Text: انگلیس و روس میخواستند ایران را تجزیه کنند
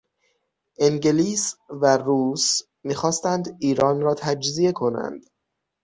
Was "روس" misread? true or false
false